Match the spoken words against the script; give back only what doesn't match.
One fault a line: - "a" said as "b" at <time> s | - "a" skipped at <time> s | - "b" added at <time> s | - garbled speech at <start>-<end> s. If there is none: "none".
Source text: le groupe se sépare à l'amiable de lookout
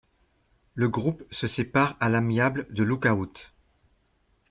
none